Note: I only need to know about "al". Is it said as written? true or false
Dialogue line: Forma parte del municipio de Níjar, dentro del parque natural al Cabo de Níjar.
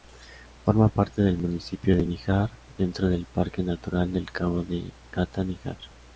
false